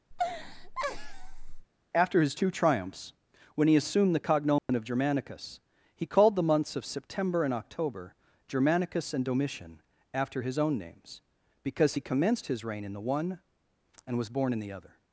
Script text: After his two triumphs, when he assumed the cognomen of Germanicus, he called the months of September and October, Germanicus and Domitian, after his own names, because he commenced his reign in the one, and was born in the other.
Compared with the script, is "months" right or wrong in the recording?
right